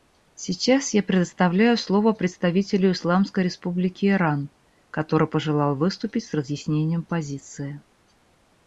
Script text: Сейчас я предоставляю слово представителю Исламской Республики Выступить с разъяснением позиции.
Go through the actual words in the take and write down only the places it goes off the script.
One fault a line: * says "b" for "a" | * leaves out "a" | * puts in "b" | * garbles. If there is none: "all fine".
* puts in "Иран который пожелал"